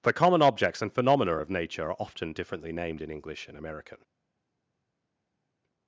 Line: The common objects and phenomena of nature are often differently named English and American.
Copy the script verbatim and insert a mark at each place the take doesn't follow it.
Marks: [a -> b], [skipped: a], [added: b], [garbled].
The common objects and phenomena of nature are often differently named [added: in] English and American.